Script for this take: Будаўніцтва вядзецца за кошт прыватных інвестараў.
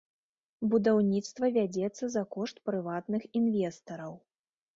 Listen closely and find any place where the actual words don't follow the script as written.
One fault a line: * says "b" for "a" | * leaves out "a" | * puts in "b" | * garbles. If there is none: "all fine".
all fine